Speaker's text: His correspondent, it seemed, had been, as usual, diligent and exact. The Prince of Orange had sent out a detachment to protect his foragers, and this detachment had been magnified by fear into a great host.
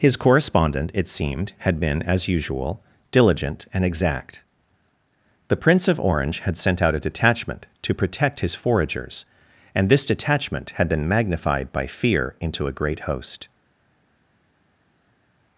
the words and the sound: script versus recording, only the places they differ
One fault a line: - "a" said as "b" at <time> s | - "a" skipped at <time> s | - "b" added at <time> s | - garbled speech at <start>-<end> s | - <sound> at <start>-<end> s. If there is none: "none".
none